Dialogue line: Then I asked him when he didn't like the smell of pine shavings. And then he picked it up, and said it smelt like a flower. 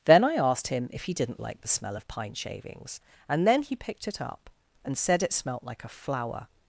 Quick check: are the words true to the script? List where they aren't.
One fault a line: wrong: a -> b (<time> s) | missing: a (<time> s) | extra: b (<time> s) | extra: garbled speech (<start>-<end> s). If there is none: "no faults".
wrong: when -> if (0.9 s)